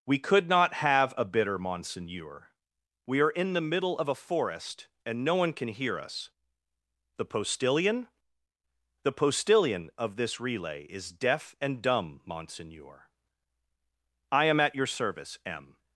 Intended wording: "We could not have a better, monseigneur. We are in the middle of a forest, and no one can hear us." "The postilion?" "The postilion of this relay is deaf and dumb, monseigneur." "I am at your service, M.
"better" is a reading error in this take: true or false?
true